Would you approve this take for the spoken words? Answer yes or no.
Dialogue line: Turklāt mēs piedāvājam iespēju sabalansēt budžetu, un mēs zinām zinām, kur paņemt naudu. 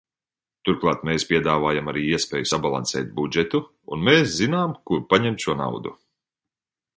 no